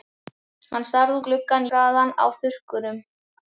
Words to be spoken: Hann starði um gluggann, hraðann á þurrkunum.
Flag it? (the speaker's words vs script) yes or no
no